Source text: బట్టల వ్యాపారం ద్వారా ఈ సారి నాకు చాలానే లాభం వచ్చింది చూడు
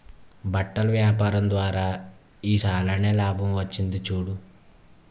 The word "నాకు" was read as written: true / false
false